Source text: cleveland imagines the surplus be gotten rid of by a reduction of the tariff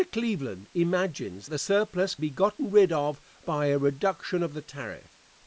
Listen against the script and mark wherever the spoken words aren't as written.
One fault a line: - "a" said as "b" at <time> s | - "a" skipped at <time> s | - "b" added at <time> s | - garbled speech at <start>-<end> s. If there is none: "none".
none